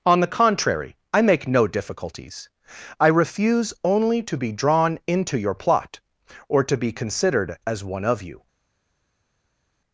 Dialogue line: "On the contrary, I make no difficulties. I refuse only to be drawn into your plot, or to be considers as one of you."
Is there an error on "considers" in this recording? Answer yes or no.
yes